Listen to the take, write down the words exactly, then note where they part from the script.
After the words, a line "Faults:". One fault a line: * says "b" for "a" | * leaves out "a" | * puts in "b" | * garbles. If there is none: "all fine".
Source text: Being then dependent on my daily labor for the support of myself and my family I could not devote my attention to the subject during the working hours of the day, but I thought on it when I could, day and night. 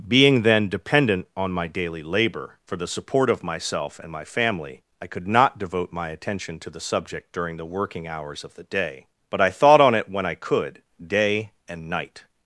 Being then dependent on my daily labor for the support of myself and my family I could not devote my attention to the subject during the working hours of the day, but I thought on it when I could, day and night.
Faults:
all fine